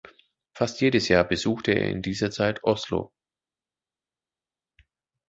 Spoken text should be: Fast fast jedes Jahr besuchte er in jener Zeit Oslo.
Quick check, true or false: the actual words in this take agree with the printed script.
false